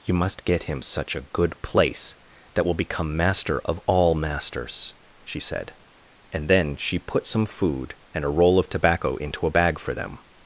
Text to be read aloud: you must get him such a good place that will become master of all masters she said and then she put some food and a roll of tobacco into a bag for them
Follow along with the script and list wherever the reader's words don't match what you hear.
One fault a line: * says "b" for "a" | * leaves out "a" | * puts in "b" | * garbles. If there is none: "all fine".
all fine